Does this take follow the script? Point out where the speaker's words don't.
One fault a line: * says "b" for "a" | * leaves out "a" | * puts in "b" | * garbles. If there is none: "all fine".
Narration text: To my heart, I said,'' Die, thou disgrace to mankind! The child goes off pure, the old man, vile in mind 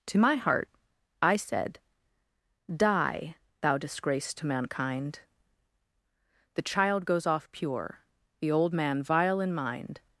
all fine